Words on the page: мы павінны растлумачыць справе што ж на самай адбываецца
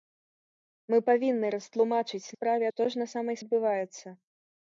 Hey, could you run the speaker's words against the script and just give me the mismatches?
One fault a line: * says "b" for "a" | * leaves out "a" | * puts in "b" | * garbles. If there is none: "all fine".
all fine